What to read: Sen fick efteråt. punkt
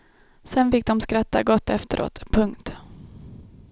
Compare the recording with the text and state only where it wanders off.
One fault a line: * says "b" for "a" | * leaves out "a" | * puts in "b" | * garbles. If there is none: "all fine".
* puts in "de skratta gott"